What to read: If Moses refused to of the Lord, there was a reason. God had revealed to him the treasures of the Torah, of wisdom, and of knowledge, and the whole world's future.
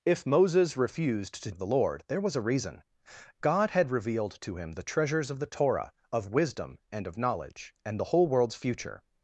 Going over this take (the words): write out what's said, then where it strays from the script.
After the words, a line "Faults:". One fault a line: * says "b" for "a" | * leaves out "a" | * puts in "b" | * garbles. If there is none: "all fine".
If Moses refused to of the Lord, there was a reason. God had revealed to him the treasures of the Torah, of wisdom, and of knowledge, and the whole world's future.
Faults:
all fine